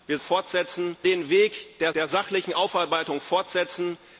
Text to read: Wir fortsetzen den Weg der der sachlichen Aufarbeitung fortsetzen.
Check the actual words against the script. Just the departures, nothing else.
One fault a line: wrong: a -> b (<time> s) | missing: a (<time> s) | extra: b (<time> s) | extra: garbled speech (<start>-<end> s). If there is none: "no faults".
no faults